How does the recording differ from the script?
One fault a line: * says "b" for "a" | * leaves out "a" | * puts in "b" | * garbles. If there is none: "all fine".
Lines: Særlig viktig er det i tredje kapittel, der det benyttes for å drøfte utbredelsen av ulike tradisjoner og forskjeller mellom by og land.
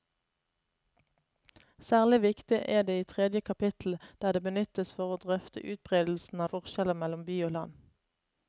* leaves out "av ulike tradisjoner"